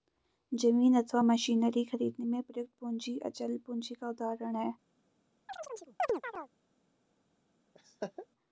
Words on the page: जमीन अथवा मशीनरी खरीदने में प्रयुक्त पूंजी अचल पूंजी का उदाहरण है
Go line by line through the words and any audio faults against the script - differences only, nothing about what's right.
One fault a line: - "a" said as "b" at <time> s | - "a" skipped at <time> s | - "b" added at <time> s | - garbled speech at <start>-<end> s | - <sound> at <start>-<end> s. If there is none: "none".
- chirp at 5.5-6.5 s
- laugh at 7.7-8.3 s